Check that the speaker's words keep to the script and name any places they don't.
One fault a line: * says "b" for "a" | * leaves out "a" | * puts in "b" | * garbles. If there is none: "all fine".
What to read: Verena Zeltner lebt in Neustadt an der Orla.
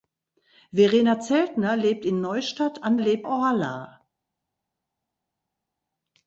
* says "lebt" for "der"